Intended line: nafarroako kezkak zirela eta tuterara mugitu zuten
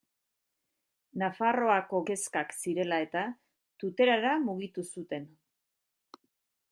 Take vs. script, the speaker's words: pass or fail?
pass